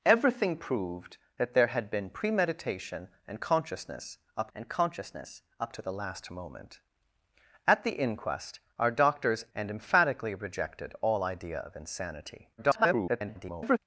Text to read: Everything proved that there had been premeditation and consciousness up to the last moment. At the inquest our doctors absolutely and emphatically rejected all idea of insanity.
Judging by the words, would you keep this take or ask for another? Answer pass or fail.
fail